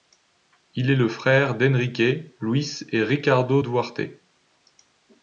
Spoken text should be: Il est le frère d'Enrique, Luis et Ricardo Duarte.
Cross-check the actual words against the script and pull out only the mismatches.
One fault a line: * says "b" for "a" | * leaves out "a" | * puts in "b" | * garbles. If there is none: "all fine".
all fine